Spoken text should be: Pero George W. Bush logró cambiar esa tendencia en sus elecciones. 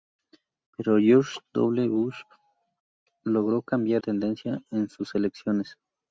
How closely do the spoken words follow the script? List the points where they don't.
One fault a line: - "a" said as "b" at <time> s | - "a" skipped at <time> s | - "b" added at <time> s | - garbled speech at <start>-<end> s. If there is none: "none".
- "esa" skipped at 4.0 s